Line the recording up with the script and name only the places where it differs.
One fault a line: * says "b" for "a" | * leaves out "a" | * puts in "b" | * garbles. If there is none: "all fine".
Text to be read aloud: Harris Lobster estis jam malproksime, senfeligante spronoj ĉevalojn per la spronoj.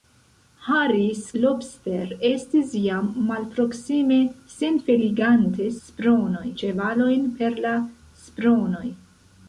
all fine